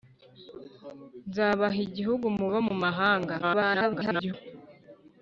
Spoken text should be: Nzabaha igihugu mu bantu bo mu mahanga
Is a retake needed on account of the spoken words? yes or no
yes